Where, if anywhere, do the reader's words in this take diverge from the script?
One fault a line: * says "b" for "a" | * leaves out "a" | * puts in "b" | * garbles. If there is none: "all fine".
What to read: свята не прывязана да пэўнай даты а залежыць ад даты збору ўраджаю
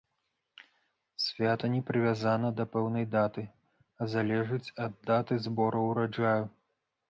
all fine